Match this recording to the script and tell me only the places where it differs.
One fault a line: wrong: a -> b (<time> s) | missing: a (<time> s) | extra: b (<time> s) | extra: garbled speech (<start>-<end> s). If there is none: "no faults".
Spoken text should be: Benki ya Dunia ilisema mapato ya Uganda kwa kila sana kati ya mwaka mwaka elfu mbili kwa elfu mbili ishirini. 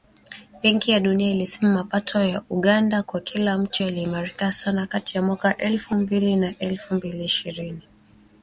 extra: mtu yaliimarika (3.6 s)
missing: mwaka (5.6 s)
wrong: kwa -> na (6.4 s)